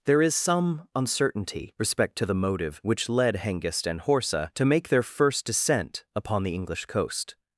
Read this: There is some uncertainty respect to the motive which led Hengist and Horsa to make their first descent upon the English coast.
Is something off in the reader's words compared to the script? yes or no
no